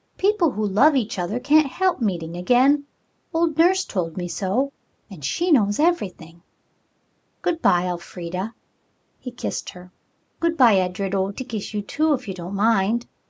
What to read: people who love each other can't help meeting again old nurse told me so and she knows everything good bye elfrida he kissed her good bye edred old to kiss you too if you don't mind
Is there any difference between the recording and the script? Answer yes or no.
no